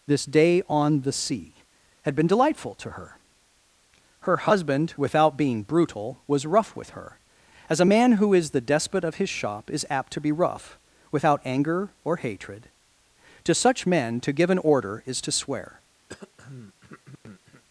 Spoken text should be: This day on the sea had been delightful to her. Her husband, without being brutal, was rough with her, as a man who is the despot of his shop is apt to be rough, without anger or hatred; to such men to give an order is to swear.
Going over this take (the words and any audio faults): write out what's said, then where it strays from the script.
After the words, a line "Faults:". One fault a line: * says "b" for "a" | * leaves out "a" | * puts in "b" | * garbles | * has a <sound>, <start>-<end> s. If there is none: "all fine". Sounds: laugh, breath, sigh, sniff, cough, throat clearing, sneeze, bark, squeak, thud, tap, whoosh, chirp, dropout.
This day on the sea had been delightful to her. Her husband, without being brutal, was rough with her, as a man who is the despot of his shop is apt to be rough, without anger or hatred; to such men to give an order is to swear.
Faults:
* has a throat clearing, 16.1-17.6 s